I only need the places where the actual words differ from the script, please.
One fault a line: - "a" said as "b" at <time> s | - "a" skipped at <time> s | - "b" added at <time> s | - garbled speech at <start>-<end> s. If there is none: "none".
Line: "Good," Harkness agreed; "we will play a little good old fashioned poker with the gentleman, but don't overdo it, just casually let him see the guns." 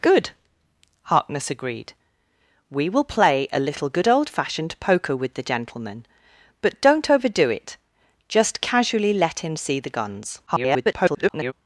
- garbled speech at 10.5-11.5 s